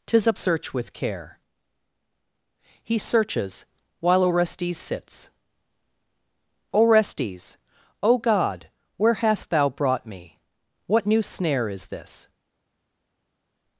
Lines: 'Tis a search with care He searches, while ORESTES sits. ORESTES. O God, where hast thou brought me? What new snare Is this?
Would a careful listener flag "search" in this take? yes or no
no